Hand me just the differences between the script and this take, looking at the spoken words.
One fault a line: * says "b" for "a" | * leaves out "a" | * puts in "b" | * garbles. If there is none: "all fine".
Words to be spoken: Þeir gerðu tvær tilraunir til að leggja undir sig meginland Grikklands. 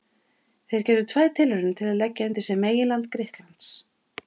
all fine